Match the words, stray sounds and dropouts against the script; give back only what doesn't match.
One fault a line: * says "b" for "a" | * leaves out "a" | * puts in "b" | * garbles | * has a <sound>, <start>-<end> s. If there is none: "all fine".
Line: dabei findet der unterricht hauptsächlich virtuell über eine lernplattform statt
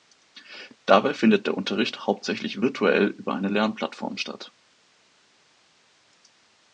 all fine